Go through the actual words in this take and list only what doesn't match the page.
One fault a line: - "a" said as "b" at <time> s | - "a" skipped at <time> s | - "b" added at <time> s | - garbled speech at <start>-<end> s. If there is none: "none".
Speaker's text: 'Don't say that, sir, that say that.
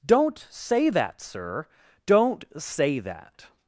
- "that" said as "don't" at 2.1 s